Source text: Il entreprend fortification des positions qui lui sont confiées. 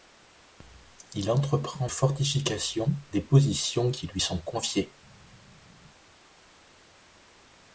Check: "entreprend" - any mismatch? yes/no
no